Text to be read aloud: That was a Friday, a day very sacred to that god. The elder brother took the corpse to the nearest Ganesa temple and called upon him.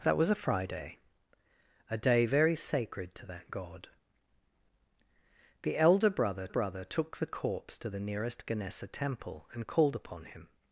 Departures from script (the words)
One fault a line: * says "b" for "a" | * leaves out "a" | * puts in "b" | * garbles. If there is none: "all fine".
* puts in "brother"